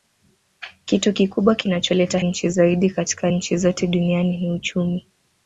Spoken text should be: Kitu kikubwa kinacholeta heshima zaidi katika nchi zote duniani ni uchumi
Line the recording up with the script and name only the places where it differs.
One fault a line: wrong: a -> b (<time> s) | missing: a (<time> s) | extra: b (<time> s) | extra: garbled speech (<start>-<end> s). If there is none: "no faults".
wrong: heshima -> nchi (2.2 s)